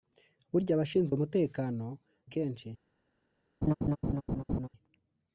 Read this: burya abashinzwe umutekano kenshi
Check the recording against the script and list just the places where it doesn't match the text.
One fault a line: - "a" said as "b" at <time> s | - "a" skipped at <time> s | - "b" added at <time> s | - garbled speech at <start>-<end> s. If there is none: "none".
none